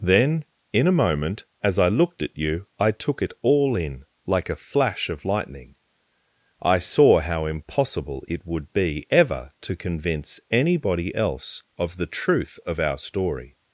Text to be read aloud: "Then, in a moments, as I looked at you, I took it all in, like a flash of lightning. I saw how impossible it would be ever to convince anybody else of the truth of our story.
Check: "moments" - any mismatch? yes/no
yes